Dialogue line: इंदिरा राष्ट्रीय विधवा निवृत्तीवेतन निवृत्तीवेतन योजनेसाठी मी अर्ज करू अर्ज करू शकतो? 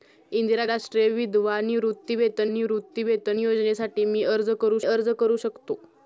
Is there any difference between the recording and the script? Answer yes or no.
no